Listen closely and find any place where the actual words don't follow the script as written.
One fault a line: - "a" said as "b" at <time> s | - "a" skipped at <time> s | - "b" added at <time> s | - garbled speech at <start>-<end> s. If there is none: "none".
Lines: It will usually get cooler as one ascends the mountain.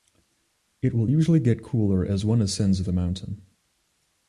none